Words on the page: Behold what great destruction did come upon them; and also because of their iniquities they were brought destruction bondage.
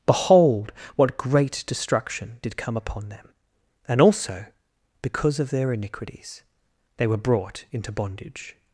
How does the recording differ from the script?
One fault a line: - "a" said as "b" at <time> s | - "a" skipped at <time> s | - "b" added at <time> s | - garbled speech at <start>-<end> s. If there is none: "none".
- "destruction" said as "into" at 7.7 s